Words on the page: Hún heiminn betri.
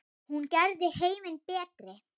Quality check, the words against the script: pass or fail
fail